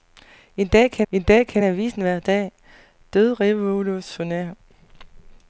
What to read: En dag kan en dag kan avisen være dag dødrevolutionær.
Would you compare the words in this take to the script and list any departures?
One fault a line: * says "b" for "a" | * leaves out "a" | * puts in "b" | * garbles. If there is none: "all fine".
all fine